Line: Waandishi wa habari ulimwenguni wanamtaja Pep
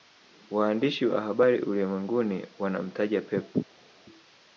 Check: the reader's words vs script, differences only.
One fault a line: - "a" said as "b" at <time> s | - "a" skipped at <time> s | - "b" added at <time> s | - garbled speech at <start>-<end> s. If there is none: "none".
none